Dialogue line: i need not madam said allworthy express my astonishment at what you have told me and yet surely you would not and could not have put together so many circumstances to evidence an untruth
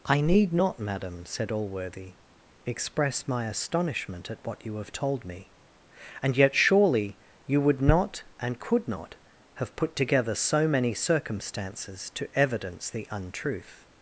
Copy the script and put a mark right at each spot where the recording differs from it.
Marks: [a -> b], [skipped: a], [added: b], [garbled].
i need not madam said allworthy express my astonishment at what you have told me and yet surely you would not and could not have put together so many circumstances to evidence [an -> the] untruth